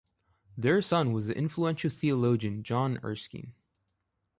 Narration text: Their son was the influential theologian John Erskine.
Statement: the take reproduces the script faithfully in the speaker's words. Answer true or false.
true